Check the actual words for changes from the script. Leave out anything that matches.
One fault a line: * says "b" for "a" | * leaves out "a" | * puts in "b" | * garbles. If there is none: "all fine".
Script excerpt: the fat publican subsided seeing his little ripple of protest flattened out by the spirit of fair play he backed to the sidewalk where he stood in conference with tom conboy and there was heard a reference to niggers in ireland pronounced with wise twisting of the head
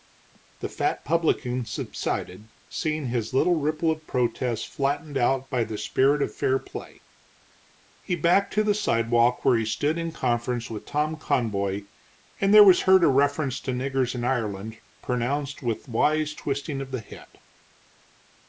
all fine